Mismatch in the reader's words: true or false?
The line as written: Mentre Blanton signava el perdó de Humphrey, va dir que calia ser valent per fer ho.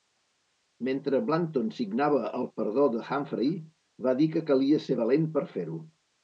false